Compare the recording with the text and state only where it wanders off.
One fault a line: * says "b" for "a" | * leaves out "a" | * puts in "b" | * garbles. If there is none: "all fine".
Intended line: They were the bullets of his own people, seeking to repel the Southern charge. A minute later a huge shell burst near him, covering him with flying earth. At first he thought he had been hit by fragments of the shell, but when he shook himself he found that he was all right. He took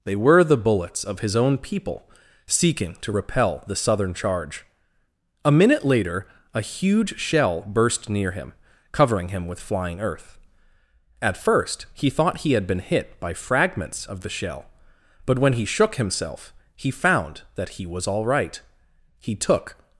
all fine